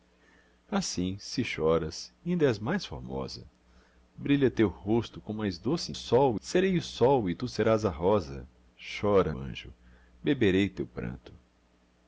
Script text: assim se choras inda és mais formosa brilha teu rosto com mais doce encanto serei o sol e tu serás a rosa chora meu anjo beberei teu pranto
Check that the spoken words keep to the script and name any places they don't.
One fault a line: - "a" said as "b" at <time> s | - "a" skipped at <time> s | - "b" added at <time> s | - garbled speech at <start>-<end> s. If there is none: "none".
- "encanto" said as "sol" at 5.9 s
- "meu" skipped at 9.3 s